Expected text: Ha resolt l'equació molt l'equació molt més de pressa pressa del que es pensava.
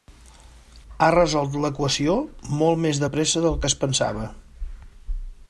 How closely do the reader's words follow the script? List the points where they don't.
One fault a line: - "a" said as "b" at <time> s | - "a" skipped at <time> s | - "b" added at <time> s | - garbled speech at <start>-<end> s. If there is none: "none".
- "l'equació molt" skipped at 2.8 s
- "pressa" skipped at 3.5 s